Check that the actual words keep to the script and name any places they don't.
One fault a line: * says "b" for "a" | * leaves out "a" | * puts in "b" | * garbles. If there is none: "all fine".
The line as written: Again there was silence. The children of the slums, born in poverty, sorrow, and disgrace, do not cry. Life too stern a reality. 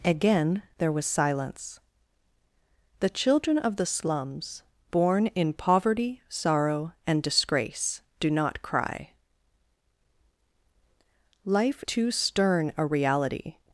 all fine